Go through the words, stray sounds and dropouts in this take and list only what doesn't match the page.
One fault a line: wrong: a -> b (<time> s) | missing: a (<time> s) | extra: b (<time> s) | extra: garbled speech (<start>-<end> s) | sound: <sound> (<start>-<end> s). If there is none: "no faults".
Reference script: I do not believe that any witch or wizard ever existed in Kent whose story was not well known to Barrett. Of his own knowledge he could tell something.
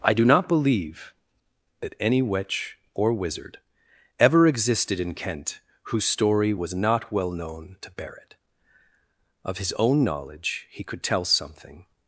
no faults